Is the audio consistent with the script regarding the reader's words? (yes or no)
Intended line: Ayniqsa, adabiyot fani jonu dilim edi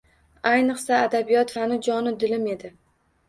yes